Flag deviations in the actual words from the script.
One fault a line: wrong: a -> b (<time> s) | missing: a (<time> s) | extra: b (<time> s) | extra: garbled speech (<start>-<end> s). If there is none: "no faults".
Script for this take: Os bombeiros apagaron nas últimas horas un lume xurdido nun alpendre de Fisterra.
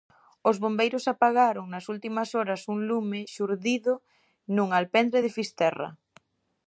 no faults